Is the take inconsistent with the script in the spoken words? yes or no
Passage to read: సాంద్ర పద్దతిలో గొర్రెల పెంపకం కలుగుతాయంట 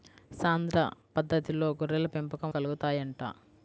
no